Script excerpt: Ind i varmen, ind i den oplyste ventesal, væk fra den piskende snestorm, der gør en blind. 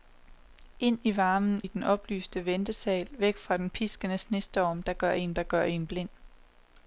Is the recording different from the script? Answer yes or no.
yes